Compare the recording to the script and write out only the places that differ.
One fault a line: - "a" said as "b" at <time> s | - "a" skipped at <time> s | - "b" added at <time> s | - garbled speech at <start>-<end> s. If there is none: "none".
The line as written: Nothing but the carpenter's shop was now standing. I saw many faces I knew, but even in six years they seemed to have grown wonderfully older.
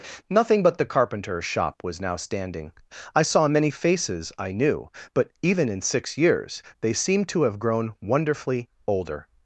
none